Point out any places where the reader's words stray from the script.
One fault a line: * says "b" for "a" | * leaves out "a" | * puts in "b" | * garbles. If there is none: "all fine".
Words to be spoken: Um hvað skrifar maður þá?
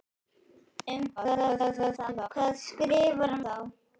* garbles
* leaves out "maður"